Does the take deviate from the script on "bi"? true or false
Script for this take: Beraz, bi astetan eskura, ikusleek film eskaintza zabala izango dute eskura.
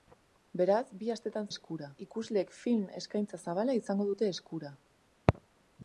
false